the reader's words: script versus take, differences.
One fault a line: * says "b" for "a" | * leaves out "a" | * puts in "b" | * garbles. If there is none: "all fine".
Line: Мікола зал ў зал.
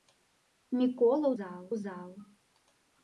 all fine